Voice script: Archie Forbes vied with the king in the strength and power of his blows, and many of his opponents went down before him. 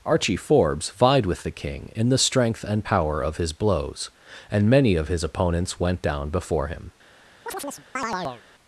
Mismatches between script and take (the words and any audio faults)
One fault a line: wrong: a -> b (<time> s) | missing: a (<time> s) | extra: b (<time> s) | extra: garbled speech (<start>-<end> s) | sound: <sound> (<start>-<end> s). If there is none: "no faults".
sound: chirp (7.5-8.4 s)